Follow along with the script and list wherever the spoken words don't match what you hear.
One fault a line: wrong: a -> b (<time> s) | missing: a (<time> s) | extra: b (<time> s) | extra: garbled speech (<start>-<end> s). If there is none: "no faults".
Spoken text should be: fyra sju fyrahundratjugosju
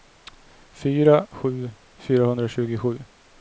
no faults